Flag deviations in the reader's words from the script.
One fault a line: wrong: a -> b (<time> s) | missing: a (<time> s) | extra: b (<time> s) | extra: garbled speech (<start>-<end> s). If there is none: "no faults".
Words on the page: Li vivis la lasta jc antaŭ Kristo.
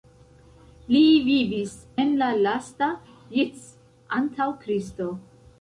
extra: en (2.0 s)